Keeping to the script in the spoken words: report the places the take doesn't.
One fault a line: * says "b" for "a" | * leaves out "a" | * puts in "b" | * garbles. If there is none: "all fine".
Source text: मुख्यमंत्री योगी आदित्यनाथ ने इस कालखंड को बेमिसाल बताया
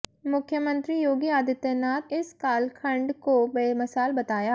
* leaves out "ने"